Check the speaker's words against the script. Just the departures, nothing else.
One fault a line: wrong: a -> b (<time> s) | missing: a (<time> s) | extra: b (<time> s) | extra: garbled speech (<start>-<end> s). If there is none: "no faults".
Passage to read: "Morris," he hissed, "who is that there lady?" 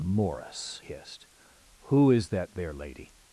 missing: he (0.8 s)